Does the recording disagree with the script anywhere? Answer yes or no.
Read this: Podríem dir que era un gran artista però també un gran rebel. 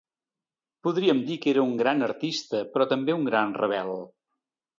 no